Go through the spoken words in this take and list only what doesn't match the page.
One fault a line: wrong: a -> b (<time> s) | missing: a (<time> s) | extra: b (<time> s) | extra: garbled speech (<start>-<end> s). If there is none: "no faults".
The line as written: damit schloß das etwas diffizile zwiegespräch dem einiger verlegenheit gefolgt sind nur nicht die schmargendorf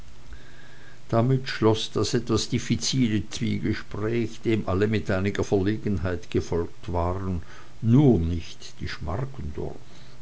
extra: alle mit (4.6 s)
wrong: sind -> waren (6.9 s)